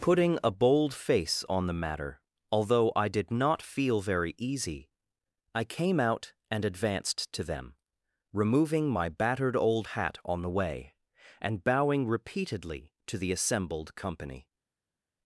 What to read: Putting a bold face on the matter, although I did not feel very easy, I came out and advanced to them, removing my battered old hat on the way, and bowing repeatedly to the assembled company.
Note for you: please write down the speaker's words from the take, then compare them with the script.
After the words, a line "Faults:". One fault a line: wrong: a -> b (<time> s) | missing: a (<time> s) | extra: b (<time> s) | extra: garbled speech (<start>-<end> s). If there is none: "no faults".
Putting a bold face on the matter, although I did not feel very easy, I came out and advanced to them, removing my battered old hat on the way, and bowing repeatedly to the assembled company.
Faults:
no faults